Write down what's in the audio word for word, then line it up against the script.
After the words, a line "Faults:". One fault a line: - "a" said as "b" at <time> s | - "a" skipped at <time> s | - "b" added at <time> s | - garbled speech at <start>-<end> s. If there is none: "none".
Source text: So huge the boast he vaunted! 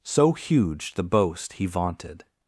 So huge the boast he vaunted!
Faults:
none